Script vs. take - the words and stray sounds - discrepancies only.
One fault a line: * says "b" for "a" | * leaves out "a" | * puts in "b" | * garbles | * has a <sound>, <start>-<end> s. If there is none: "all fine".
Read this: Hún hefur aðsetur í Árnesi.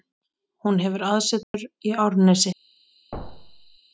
* has a dropout, 1.4-1.5 s
* has a thud, 3.1-3.8 s